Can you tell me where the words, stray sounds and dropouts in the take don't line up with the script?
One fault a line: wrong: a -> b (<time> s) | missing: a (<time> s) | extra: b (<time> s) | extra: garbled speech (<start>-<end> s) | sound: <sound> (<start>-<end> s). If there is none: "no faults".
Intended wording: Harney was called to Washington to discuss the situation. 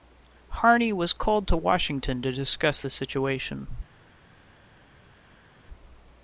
no faults